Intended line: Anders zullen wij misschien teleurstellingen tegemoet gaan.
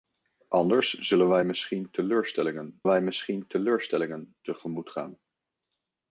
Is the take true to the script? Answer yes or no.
no